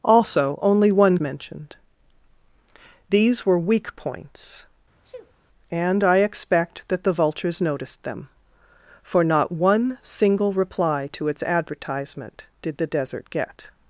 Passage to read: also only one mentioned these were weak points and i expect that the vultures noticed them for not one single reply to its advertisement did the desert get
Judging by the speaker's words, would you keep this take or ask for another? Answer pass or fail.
pass